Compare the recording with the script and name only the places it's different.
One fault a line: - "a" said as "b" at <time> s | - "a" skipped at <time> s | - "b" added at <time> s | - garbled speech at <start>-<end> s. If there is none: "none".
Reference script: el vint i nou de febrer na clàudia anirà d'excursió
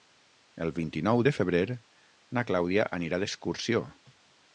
none